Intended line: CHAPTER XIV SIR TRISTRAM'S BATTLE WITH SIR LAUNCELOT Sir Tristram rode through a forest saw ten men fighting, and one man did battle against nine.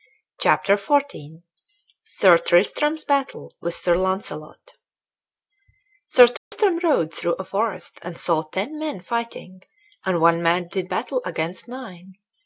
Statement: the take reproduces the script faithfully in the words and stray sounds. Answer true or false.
false